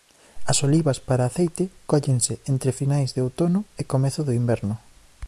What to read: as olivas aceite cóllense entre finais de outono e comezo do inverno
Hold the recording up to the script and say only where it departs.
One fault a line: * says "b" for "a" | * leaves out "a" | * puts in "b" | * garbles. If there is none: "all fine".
* puts in "para"